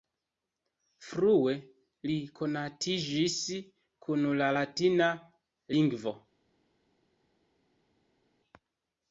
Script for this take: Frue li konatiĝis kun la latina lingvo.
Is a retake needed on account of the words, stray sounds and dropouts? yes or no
no